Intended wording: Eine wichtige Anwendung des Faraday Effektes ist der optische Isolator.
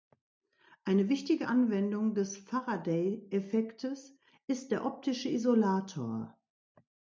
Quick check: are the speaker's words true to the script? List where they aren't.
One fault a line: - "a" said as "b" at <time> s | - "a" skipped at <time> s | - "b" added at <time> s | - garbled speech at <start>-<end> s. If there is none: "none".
none